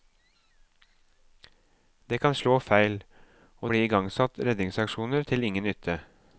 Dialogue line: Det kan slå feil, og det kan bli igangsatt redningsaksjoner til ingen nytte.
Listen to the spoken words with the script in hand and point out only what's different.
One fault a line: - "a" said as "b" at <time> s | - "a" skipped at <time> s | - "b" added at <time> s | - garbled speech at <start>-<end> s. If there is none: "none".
- "det kan" skipped at 3.7 s